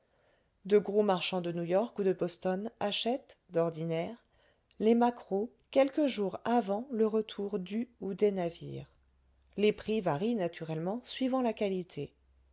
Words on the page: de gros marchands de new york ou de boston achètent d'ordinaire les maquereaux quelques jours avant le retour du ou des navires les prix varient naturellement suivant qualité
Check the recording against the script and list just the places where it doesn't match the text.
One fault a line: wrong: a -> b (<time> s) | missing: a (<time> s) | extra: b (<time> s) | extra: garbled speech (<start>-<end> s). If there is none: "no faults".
extra: la (11.4 s)